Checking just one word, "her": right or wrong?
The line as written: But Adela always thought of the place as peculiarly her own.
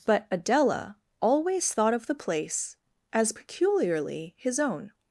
wrong